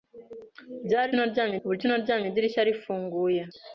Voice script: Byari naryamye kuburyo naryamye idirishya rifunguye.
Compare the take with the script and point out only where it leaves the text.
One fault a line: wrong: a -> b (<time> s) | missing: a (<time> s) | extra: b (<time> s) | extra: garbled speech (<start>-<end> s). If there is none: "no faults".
no faults